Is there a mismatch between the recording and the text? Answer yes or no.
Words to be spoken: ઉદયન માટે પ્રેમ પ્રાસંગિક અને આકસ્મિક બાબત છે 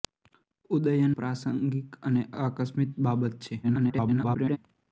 yes